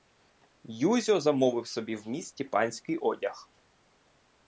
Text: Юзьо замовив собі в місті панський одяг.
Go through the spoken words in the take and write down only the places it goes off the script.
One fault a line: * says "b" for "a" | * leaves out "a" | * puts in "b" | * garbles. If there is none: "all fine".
all fine